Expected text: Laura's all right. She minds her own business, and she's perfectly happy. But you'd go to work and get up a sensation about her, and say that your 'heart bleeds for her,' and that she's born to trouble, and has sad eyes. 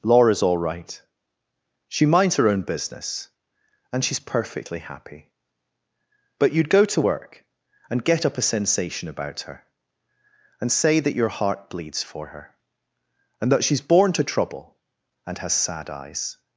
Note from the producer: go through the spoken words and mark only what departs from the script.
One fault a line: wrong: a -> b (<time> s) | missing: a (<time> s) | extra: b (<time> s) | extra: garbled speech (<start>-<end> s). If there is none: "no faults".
no faults